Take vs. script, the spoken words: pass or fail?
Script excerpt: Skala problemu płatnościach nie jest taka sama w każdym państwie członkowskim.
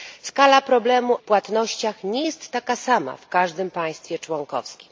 pass